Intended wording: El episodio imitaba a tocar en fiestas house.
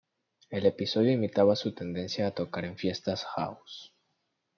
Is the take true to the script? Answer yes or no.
no